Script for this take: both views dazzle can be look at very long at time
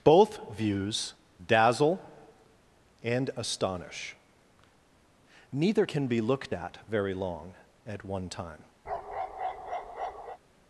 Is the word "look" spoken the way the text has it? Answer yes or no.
no